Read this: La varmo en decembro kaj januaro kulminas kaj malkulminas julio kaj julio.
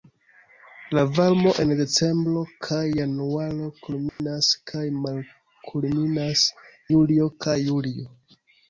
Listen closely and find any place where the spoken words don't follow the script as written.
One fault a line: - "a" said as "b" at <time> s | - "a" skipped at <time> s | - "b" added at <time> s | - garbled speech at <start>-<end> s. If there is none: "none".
none